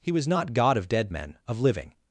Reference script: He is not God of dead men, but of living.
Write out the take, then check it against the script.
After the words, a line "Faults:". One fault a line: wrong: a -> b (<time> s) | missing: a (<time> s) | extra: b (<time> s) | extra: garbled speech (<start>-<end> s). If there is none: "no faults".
He was not God of dead men, of living.
Faults:
wrong: is -> was (0.1 s)
missing: but (1.4 s)